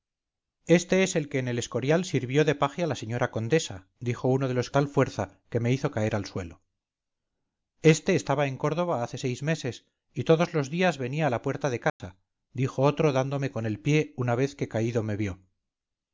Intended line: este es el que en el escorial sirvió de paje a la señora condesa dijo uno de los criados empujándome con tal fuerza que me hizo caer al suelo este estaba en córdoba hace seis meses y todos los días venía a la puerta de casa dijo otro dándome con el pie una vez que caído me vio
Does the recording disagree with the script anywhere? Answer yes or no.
yes